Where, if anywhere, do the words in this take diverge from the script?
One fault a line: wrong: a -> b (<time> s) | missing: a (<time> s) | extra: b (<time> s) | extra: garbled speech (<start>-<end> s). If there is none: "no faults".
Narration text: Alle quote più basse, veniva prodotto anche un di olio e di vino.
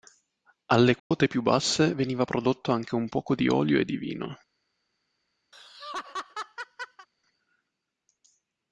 extra: poco (3.1 s)